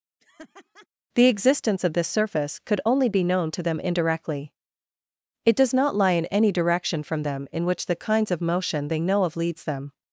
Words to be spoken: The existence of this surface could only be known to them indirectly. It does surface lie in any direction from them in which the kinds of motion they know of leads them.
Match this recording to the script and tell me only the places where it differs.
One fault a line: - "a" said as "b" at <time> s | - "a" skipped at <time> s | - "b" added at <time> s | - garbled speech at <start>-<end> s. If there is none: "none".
- "surface" said as "not" at 5.7 s